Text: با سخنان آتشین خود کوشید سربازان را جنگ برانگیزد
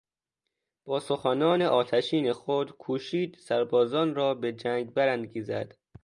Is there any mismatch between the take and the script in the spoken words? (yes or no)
yes